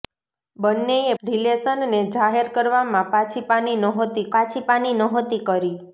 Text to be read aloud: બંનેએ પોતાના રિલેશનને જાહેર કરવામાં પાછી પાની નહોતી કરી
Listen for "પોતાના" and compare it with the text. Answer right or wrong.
wrong